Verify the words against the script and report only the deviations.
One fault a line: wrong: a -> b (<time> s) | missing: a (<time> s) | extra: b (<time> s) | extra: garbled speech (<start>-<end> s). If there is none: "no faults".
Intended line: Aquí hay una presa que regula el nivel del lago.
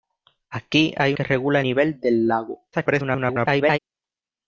missing: una presa (1.1 s)
missing: el (1.6 s)
extra: garbled speech (2.7-3.8 s)